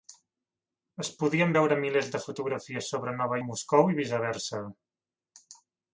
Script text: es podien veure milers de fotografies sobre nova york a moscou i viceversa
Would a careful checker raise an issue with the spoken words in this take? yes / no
yes